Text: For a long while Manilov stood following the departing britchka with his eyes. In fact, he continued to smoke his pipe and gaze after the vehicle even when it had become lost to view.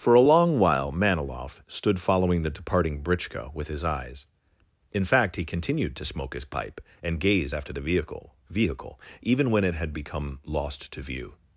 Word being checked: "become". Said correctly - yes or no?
yes